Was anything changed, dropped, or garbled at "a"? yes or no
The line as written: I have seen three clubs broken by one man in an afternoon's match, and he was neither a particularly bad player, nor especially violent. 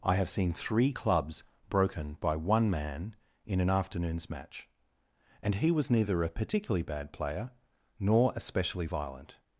no